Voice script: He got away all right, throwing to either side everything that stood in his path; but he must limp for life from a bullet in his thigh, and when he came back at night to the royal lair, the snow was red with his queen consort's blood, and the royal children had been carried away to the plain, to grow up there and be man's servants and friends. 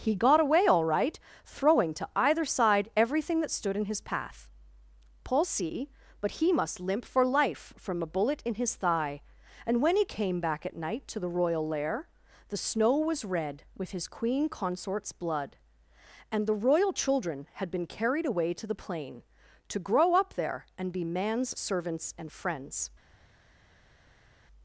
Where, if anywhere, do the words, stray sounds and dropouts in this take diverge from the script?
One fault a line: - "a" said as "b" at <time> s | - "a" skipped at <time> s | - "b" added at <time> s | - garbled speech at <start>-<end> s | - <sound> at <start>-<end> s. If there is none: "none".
- "paul see" added at 5.2 s